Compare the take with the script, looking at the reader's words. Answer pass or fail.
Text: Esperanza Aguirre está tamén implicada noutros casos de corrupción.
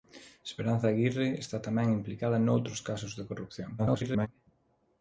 fail